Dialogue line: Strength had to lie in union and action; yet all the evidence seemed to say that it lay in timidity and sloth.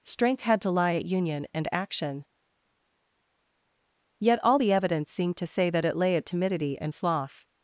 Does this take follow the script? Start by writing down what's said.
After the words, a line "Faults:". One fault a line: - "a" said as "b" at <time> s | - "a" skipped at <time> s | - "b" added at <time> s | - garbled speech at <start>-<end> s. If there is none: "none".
Strength had to lie at union and action; yet all the evidence seemed to say that it lay at timidity and sloth.
Faults:
- "in" said as "at" at 0.9 s
- "in" said as "at" at 6.2 s